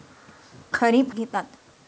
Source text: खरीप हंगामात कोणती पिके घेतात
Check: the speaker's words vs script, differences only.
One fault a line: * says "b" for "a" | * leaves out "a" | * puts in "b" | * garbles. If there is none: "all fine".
* leaves out "हंगामात कोणती पिके"